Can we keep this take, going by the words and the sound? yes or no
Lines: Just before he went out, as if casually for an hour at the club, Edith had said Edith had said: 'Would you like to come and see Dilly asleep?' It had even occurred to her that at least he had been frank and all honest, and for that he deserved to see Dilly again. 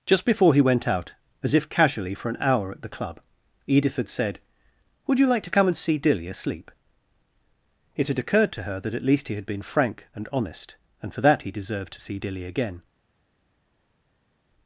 no